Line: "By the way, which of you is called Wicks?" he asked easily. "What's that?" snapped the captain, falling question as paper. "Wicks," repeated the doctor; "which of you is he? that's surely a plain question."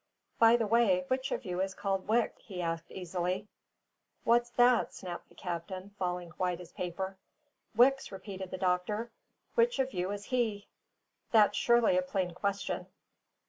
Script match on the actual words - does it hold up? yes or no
no